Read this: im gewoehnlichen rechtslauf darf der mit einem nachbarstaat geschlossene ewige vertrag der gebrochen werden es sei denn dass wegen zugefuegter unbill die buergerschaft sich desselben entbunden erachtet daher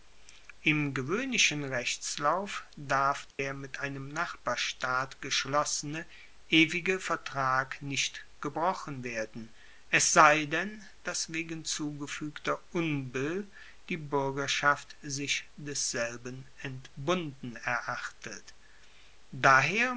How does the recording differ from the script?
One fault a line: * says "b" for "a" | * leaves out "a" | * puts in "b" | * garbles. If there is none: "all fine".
* says "nicht" for "der"